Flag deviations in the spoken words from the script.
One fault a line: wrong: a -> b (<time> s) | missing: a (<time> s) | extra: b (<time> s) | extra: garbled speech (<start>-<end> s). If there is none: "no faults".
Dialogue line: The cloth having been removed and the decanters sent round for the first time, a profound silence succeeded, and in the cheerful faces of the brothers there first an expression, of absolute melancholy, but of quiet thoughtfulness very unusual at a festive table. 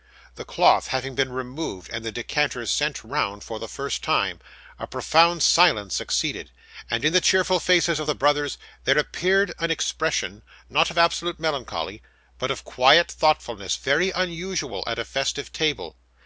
wrong: first -> appeared (9.0 s)
extra: not (10.7 s)